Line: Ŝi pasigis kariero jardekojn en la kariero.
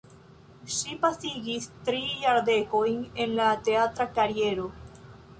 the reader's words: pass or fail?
fail